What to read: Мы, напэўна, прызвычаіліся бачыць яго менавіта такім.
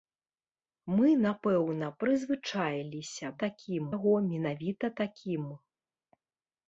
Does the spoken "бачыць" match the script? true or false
false